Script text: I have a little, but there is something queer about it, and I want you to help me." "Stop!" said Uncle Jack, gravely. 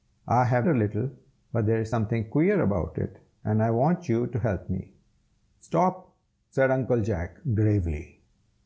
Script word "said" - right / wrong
right